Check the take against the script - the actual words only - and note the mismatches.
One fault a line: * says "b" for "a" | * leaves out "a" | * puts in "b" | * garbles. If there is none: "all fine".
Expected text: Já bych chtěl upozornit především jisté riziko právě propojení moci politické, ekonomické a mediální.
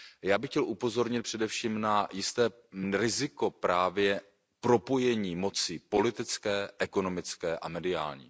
* puts in "na"